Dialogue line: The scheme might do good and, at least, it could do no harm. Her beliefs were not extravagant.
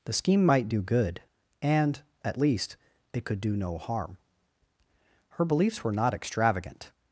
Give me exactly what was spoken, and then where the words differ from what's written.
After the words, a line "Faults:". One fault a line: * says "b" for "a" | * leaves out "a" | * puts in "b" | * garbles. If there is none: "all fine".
The scheme might do good and, at least, it could do no harm. Her beliefs were not extravagant.
Faults:
all fine